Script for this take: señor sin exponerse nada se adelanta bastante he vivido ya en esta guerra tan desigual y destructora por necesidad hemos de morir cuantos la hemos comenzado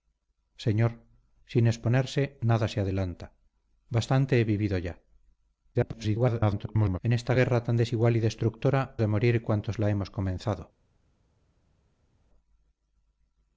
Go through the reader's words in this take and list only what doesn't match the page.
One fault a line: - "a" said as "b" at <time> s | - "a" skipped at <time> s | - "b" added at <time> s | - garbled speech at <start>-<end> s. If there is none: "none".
- garbled speech at 5.7-7.0 s
- "por necesidad hemos" skipped at 8.8 s